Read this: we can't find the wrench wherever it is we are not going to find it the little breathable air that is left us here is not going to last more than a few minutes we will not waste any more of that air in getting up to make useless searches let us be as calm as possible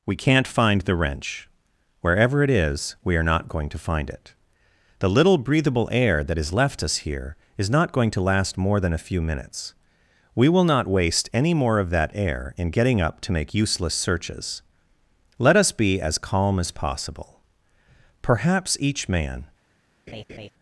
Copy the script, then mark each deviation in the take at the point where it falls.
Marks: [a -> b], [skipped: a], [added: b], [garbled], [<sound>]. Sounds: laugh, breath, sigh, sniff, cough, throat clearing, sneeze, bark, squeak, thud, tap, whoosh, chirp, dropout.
we can't find the wrench wherever it is we are not going to find it the little breathable air that is left us here is not going to last more than a few minutes we will not waste any more of that air in getting up to make useless searches let us be as calm as possible [added: perhaps each man] [laugh]